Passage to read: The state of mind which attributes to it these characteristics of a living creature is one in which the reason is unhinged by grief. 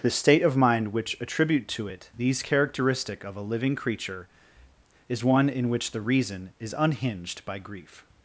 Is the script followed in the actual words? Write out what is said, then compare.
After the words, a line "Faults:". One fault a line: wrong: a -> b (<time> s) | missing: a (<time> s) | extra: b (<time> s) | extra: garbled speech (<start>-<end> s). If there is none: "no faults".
The state of mind which attribute to it these characteristic of a living creature is one in which the reason is unhinged by grief.
Faults:
wrong: attributes -> attribute (1.2 s)
wrong: characteristics -> characteristic (2.4 s)